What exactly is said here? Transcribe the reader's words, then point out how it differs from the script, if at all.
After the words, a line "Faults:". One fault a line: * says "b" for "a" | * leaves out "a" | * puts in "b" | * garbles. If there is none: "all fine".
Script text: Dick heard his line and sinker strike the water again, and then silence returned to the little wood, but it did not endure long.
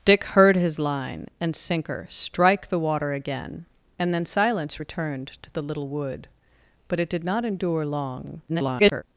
Dick heard his line and sinker strike the water again, and then silence returned to the little wood, but it did not endure long. [garbled]
Faults:
* garbles